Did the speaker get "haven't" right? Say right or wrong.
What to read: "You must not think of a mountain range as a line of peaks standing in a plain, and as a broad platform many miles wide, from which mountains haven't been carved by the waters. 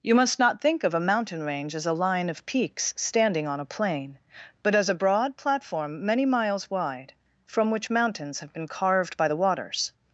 wrong